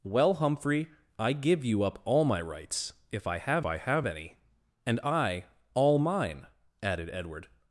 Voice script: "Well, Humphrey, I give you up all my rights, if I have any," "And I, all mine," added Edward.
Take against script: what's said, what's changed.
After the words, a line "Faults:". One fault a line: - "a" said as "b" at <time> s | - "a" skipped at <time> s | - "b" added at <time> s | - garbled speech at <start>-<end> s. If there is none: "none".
"Well, Humphrey, I give you up all my rights, if I have I have any," "And I, all mine," added Edward.
Faults:
- "I have" added at 3.7 s